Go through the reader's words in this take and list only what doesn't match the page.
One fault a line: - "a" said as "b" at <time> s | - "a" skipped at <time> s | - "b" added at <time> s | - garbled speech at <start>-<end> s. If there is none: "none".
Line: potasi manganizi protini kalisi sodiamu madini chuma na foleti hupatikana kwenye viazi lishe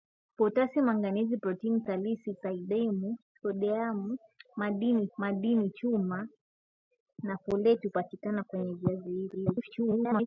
- "madini" added at 5.2 s
- garbled speech at 9.3-10.3 s